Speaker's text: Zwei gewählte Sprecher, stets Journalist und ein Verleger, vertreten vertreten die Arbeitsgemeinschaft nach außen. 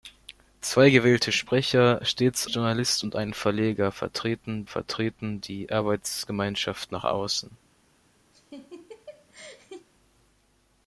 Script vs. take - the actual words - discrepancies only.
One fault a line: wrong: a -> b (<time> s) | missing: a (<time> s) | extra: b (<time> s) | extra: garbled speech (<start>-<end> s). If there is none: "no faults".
no faults